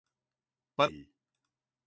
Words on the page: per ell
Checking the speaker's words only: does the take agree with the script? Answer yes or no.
yes